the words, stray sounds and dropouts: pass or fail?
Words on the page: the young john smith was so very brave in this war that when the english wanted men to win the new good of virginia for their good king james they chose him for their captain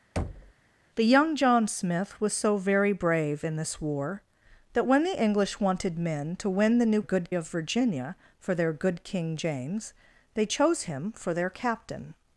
fail